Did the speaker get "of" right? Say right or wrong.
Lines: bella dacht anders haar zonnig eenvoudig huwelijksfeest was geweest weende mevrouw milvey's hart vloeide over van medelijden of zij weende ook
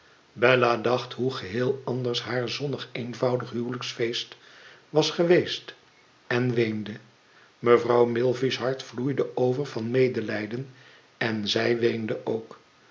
wrong